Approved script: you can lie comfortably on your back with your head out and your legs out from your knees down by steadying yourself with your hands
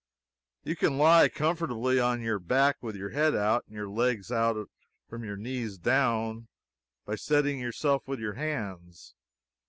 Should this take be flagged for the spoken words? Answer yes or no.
no